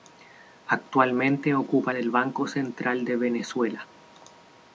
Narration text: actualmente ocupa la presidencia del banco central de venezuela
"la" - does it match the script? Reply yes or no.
no